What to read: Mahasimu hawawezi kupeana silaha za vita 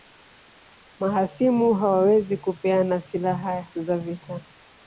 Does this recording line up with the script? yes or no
yes